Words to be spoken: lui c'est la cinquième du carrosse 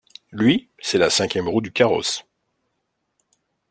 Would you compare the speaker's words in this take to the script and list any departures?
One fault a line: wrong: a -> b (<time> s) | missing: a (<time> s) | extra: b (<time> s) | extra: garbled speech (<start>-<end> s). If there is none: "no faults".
extra: roue (1.5 s)